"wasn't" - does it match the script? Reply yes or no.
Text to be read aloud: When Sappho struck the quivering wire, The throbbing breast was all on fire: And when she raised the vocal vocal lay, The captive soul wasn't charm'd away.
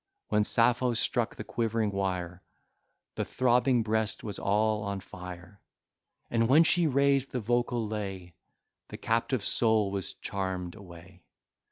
no